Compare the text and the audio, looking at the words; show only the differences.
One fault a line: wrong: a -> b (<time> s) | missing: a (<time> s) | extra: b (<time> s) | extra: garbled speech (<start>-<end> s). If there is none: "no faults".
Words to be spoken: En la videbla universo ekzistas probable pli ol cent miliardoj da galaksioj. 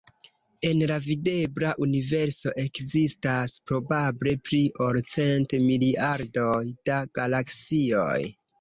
no faults